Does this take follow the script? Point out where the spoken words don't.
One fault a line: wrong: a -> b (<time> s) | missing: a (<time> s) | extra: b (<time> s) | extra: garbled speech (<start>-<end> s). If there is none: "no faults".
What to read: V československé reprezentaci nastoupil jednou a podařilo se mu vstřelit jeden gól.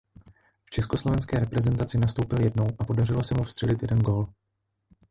no faults